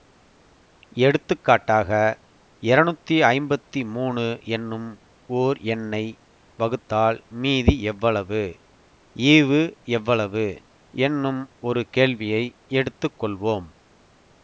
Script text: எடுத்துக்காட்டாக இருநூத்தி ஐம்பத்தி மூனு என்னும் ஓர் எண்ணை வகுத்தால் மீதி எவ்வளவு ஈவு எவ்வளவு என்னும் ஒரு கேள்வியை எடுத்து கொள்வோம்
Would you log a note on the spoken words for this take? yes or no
no